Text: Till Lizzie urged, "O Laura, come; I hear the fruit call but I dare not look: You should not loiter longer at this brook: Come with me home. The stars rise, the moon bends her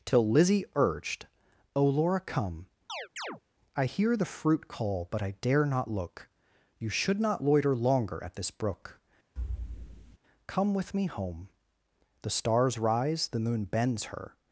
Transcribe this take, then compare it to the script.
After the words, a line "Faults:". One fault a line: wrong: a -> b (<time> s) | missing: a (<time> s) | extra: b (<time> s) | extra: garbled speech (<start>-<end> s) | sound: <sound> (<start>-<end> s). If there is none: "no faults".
Till Lizzie urged, "O Laura, come; I hear the fruit call but I dare not look: You should not loiter longer at this brook: Come with me home. The stars rise, the moon bends her
Faults:
sound: chirp (2.9-3.4 s)
sound: thud (9.4-10.2 s)